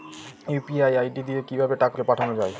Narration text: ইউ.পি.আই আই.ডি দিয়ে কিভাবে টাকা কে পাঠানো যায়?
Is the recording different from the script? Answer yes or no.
no